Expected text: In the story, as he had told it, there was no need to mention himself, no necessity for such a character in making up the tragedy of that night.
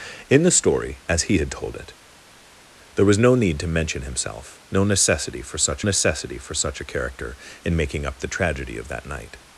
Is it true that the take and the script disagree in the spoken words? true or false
true